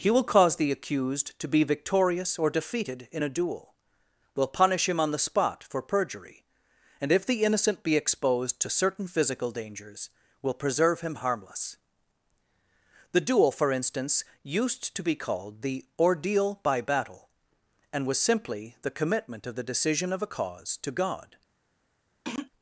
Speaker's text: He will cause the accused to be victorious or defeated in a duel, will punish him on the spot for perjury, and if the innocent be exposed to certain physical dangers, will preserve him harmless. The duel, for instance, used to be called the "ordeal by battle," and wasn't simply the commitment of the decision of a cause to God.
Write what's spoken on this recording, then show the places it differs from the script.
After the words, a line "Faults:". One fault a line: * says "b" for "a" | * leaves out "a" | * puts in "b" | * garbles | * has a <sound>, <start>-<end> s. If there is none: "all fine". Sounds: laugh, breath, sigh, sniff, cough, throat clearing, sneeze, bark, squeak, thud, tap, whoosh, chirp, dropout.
He will cause the accused to be victorious or defeated in a duel, will punish him on the spot for perjury, and if the innocent be exposed to certain physical dangers, will preserve him harmless. The duel, for instance, used to be called the "ordeal by battle," and was simply the commitment of the decision of a cause to God.
Faults:
* says "was" for "wasn't"
* has a throat clearing, 22.2-22.5 s